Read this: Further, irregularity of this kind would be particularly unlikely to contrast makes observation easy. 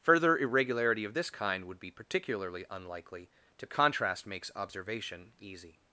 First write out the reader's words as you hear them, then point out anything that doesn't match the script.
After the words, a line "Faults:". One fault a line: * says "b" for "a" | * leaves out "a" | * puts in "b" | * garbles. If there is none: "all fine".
Further, irregularity of this kind would be particularly unlikely to contrast makes observation easy.
Faults:
all fine